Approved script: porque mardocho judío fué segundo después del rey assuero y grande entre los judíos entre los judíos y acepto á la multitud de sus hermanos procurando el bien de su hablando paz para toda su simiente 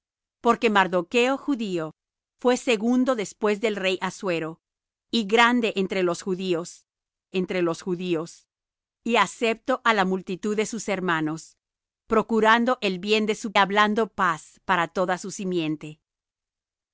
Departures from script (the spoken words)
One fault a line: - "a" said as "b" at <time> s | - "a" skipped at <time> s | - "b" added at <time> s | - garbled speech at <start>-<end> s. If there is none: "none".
none